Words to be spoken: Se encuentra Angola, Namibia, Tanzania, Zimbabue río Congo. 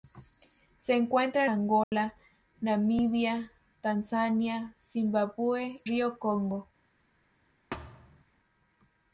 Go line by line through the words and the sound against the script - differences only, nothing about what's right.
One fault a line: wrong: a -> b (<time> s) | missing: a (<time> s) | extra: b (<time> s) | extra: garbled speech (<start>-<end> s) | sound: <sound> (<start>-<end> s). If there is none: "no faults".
sound: dropout (1.8-1.9 s)
sound: thud (7.7-8.2 s)